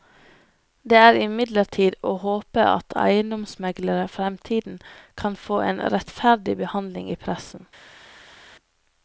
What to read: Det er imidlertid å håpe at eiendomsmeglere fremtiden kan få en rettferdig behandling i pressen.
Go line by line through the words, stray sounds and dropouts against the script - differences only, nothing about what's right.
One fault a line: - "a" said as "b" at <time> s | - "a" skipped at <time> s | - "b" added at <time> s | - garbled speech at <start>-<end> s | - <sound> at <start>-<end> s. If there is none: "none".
none